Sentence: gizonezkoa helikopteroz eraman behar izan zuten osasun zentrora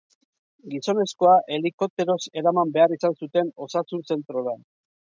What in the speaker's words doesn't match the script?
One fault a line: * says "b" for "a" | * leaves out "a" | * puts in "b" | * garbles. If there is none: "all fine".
all fine